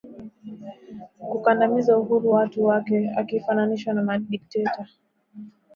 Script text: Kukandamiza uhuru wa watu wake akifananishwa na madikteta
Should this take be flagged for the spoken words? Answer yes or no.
yes